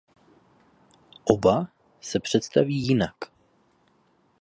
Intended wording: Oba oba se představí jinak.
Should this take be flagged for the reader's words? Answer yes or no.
yes